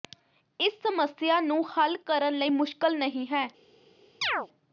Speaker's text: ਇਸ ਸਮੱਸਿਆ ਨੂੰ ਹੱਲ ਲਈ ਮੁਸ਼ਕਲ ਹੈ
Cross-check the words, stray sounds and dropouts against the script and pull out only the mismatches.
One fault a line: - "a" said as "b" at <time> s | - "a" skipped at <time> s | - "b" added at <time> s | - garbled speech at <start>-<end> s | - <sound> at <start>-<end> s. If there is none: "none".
- "ਕਰਨ" added at 2.0 s
- "ਨਹੀ" added at 3.0 s
- chirp at 4.2-4.5 s